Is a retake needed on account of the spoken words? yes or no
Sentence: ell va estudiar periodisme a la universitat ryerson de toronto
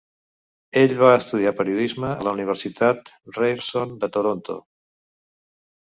no